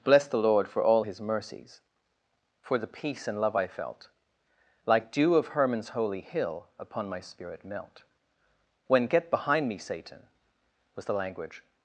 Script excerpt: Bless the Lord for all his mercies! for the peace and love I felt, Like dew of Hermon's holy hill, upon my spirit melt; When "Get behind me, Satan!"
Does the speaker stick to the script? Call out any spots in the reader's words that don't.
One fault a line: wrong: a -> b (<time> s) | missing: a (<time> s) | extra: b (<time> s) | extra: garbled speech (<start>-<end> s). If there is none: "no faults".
extra: was the language (10.9 s)